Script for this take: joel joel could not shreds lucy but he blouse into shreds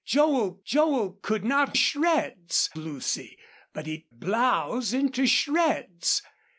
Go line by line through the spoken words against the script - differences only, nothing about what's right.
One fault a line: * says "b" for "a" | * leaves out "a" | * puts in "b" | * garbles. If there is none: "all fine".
all fine